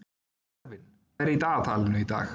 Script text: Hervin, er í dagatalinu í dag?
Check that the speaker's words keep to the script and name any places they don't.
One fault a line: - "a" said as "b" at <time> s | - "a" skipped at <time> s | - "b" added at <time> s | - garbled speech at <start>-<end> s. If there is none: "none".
none